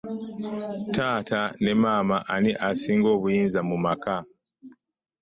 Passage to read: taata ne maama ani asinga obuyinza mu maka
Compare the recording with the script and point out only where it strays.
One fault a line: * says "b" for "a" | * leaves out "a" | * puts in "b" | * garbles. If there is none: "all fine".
all fine